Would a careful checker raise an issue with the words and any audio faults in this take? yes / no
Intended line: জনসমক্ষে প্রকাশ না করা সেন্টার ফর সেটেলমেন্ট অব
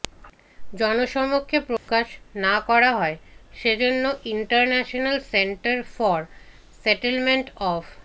yes